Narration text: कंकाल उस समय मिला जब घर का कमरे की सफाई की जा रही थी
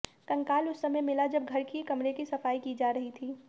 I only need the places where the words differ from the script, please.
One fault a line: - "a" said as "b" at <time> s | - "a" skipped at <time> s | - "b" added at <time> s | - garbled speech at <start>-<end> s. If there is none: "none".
- "का" said as "की" at 1.6 s